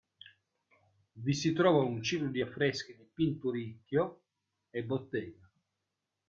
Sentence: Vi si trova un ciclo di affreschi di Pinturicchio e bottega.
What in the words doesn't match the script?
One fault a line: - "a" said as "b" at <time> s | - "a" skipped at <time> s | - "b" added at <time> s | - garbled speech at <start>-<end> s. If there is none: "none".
none